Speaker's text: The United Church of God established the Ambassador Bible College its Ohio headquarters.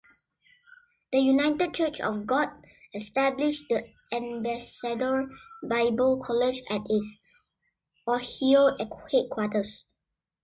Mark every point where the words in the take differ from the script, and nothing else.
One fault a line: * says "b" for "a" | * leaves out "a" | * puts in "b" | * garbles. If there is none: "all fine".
* puts in "at"